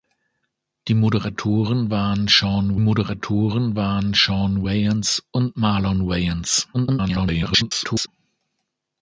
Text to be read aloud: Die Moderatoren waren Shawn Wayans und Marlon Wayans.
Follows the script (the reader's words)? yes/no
no